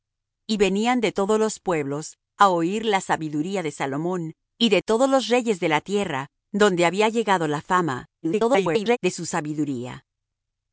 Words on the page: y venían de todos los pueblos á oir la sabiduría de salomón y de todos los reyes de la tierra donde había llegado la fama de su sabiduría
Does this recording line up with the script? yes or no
no